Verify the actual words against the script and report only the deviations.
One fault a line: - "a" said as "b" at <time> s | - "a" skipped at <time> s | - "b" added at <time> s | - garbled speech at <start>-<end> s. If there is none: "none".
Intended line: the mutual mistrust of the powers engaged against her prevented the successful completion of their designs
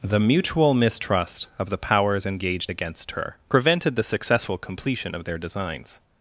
none